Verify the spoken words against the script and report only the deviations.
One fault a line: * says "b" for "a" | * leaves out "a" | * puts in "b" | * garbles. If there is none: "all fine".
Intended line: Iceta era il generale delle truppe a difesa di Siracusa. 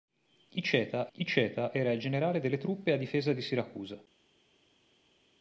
* puts in "iceta"